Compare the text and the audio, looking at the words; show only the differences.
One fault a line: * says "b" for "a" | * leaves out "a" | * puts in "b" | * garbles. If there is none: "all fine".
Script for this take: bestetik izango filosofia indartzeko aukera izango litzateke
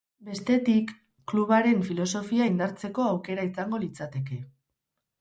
* says "klubaren" for "izango"